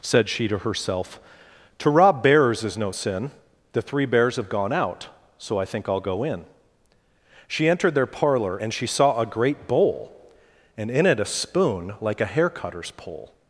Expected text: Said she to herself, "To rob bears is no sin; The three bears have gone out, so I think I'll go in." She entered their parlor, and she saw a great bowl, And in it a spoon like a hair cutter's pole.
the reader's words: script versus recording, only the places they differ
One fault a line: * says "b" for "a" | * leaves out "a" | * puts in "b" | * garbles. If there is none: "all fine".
all fine